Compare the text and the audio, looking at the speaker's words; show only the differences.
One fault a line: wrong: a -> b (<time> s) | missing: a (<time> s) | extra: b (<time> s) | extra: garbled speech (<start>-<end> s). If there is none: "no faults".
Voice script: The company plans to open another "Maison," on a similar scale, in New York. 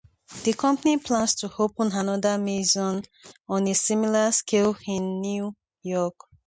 no faults